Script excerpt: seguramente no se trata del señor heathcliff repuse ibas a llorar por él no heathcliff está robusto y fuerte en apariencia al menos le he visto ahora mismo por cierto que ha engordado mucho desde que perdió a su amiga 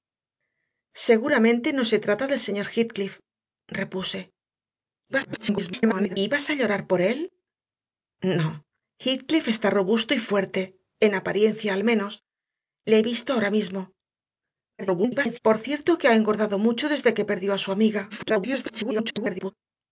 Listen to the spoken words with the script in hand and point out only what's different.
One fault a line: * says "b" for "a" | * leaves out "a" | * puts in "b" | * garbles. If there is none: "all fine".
* garbles
* garbles
* garbles